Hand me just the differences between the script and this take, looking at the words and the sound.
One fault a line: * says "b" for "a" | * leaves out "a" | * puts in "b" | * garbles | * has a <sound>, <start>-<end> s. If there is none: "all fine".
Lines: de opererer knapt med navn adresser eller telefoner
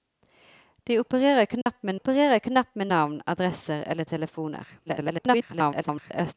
* has a dropout, 1.6-1.7 s
* puts in "opererer knapt med"
* garbles